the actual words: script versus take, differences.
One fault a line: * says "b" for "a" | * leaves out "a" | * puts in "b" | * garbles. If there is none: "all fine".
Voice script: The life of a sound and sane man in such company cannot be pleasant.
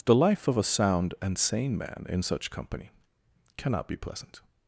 all fine